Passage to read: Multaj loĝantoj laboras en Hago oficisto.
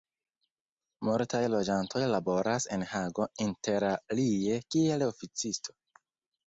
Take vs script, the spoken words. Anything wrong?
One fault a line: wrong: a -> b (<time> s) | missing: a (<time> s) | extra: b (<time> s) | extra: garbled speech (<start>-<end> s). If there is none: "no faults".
extra: interalie kiel (3.5 s)